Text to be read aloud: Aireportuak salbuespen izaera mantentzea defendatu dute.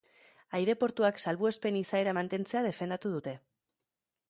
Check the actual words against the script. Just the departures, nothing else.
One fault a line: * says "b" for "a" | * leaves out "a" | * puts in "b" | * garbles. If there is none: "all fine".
all fine